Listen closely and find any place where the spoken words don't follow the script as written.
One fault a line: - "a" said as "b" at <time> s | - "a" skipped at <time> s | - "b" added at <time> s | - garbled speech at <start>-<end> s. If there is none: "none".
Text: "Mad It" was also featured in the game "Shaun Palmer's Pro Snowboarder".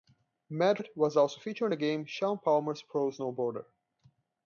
none